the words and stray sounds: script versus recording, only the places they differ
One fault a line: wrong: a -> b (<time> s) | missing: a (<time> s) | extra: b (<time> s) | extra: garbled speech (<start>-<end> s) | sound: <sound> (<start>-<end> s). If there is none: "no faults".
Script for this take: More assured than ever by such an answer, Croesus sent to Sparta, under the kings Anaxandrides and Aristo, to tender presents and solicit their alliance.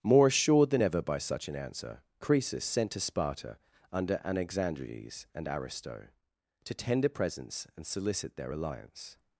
missing: the kings (4.2 s)